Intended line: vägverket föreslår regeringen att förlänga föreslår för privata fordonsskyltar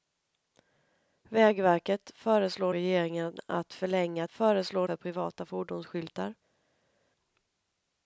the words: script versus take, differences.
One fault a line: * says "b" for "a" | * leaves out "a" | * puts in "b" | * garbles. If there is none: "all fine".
all fine